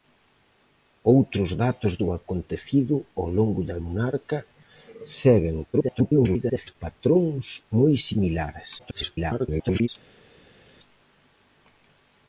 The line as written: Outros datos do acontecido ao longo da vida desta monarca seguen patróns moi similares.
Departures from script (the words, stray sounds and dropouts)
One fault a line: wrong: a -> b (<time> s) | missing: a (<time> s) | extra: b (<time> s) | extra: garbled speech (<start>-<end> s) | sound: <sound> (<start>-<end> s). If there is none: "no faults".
missing: vida desta (3.8 s)
extra: garbled speech (5.7-6.8 s)
extra: garbled speech (8.8-9.9 s)